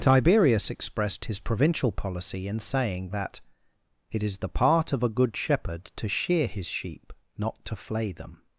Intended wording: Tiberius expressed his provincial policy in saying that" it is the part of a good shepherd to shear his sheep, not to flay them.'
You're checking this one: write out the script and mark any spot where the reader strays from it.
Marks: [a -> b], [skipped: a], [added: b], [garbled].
Tiberius expressed his provincial policy in saying that" it is the part of a good shepherd to shear his sheep, not to flay them.'